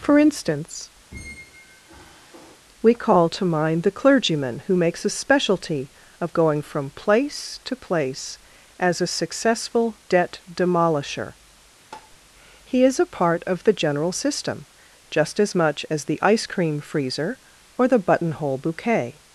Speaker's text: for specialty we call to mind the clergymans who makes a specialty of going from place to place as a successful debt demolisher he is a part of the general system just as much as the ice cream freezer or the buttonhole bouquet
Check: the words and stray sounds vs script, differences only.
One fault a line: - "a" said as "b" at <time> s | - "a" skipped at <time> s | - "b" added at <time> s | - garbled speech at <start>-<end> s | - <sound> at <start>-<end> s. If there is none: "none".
- "specialty" said as "instance" at 0.2 s
- squeak at 1.1-2.6 s
- "clergymans" said as "clergyman" at 3.9 s
- tap at 11.9-12.2 s